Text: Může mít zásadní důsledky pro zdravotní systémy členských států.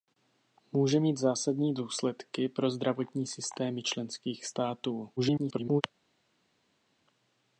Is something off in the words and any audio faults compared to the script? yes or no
yes